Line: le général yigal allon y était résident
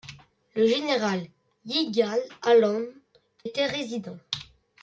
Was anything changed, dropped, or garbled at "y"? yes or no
yes